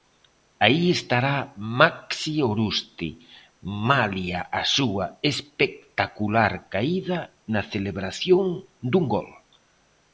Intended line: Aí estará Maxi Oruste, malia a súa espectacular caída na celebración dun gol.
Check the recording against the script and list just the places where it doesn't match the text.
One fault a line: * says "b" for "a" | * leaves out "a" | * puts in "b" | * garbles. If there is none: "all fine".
all fine